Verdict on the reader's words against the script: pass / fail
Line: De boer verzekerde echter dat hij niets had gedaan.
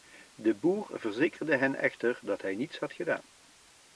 fail